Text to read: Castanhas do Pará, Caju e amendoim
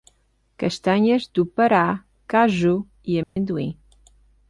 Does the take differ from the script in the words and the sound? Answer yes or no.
yes